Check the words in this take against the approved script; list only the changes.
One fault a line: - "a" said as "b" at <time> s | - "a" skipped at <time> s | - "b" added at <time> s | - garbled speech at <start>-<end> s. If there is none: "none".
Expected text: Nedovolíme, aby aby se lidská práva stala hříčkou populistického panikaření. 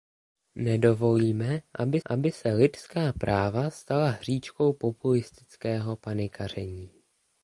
none